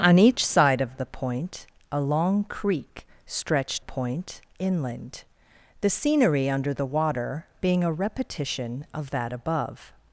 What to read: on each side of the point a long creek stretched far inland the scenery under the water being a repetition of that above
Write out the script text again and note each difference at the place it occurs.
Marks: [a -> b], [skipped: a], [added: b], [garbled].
on each side of the point a long creek stretched [far -> point] inland the scenery under the water being a repetition of that above